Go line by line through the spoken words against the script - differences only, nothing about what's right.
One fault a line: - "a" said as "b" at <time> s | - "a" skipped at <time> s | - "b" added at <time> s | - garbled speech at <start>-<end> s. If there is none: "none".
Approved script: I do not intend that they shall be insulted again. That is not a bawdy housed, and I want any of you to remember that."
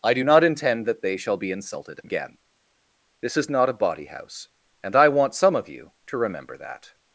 - "That" said as "This" at 3.2 s
- "housed" said as "house" at 4.1 s
- "any" said as "some" at 5.3 s